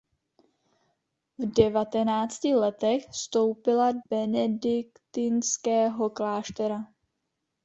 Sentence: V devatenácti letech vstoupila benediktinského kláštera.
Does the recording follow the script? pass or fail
pass